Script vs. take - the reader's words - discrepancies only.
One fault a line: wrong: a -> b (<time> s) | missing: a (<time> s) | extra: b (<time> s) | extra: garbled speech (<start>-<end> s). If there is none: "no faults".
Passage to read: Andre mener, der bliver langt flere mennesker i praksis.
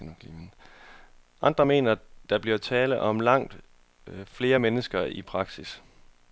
extra: tale om (2.6 s)